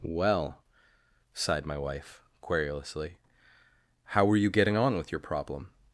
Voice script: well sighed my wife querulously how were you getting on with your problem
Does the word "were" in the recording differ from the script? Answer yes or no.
no